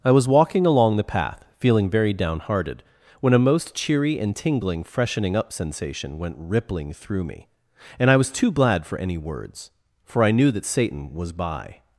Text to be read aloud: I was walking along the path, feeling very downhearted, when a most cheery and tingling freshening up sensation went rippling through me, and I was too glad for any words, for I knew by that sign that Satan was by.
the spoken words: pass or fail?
fail